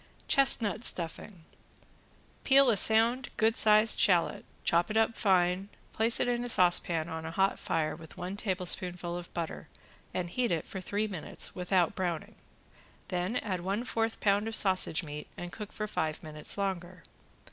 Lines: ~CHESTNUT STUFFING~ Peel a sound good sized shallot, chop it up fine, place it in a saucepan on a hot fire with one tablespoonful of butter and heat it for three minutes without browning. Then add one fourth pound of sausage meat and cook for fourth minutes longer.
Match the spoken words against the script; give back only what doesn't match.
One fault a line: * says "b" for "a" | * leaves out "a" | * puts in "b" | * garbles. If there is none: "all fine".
* says "five" for "fourth"